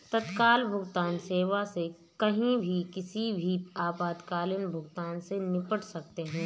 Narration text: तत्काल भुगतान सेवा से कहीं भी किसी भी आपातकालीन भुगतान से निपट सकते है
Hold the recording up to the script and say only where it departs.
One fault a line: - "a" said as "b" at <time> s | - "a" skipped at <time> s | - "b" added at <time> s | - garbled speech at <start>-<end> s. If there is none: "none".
none